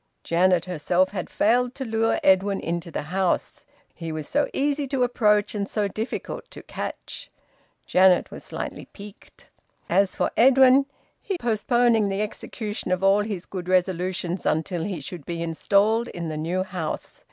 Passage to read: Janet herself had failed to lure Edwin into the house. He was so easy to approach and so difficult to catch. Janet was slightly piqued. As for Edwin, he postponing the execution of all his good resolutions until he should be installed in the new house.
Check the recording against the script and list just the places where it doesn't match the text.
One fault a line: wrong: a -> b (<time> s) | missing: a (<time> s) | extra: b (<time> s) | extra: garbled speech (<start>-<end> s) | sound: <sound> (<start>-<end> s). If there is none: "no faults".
no faults